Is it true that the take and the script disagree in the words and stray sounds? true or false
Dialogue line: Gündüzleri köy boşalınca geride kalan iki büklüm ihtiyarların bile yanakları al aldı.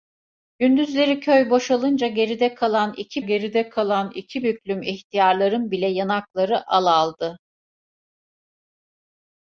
true